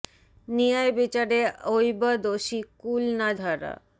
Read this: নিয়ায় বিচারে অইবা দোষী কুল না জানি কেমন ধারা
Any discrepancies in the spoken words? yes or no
yes